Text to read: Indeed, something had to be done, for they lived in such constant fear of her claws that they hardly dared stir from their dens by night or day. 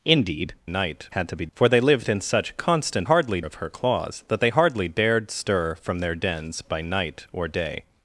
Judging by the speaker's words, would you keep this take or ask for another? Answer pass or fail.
fail